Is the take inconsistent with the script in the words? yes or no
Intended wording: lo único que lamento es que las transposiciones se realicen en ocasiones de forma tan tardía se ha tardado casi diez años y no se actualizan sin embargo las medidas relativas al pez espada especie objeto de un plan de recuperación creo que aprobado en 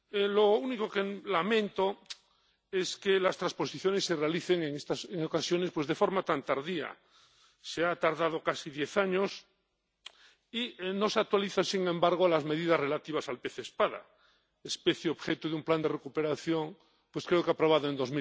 no